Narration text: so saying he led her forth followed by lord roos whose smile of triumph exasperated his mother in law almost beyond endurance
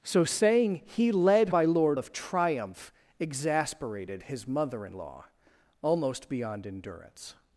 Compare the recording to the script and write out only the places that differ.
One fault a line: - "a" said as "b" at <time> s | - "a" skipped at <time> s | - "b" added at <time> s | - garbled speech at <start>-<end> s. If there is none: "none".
- "her forth followed" skipped at 1.5 s
- "roos whose smile" skipped at 2.0 s